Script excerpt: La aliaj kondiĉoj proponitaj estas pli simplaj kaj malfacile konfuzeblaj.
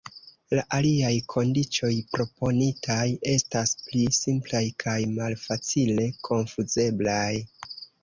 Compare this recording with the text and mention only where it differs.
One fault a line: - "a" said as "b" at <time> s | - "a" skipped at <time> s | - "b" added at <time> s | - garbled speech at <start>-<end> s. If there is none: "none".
none